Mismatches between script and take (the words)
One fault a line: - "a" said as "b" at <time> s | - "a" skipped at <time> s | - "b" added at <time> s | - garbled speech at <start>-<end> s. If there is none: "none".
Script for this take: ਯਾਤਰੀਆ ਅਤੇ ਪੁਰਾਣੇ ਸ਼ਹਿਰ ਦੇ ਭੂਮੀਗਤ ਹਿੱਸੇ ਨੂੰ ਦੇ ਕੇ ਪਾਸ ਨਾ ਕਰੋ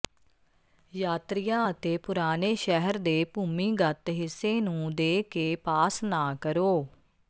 none